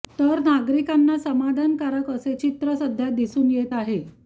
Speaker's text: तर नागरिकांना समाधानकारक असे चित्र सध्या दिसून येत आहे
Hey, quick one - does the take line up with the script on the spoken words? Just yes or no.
yes